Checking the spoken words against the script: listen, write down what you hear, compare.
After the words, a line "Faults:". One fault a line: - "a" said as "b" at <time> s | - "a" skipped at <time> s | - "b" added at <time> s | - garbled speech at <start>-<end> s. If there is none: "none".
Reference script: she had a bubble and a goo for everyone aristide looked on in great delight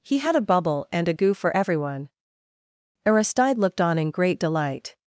he had a bubble and a goo for everyone aristide looked on in great delight
Faults:
- "she" said as "he" at 0.0 s